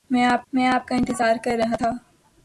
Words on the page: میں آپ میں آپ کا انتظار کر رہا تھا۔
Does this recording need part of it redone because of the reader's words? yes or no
no